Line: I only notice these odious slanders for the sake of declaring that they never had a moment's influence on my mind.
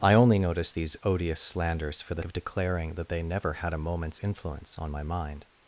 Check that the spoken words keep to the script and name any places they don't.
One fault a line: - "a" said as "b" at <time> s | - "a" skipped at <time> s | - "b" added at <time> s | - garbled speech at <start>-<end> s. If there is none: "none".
- "sake" skipped at 2.2 s